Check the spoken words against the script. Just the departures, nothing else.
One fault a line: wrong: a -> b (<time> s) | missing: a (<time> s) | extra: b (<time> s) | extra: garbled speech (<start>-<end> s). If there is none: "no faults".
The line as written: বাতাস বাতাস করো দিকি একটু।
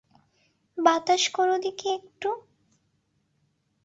missing: বাতাস (1.2 s)